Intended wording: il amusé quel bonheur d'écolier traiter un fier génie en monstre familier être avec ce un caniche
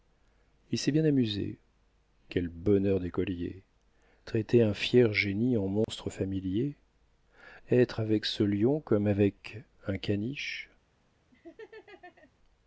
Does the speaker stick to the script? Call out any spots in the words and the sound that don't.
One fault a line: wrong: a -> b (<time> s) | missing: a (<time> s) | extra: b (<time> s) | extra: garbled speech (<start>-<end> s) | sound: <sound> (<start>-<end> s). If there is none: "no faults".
extra: s'est bien (0.8 s)
sound: dropout (5.8-5.9 s)
extra: lion comme avec (8.4 s)
sound: laugh (11.3-12.3 s)